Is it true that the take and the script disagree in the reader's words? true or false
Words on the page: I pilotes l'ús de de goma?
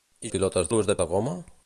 false